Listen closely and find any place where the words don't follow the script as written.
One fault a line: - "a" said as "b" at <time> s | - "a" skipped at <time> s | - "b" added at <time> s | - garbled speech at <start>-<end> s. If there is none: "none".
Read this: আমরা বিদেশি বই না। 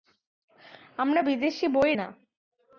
none